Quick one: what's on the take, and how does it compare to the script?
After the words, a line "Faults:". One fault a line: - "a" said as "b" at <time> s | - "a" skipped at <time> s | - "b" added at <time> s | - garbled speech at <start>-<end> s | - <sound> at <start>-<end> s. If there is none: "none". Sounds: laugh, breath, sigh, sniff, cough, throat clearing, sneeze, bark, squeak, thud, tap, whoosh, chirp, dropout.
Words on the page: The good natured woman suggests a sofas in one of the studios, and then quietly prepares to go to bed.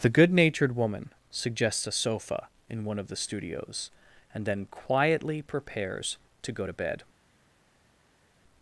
The good natured woman suggests a sofa in one of the studios, and then quietly prepares to go to bed.
Faults:
- "sofas" said as "sofa" at 1.9 s